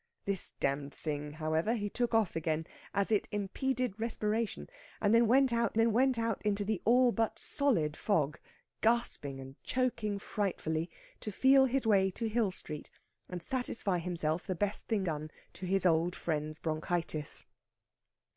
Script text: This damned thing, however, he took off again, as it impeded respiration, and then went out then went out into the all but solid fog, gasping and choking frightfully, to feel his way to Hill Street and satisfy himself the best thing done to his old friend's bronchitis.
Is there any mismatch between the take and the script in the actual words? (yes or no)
no